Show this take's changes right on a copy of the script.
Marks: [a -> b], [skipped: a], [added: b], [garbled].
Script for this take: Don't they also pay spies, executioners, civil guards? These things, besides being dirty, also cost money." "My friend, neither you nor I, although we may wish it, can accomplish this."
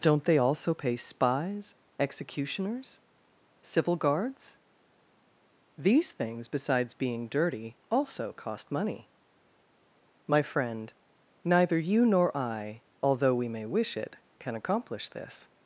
Don't they also pay spies, executioners, civil guards? These things, besides being dirty, also cost money." "My friend, neither you nor I, although we may wish it, can accomplish this."